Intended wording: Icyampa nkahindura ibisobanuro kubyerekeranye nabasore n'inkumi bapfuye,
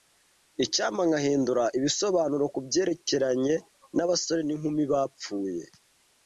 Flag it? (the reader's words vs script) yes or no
no